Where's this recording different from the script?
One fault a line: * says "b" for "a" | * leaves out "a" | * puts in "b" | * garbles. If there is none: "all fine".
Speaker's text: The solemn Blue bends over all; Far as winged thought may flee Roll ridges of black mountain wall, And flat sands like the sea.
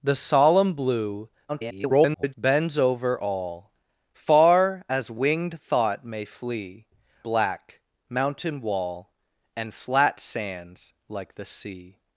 * garbles
* leaves out "Roll ridges of"